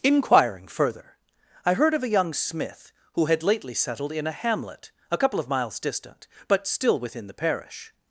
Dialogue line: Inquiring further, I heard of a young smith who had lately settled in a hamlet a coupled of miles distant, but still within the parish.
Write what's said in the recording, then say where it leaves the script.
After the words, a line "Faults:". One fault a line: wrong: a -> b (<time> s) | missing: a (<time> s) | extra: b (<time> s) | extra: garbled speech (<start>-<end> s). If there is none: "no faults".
Inquiring further, I heard of a young smith who had lately settled in a hamlet a couple of miles distant, but still within the parish.
Faults:
wrong: coupled -> couple (5.2 s)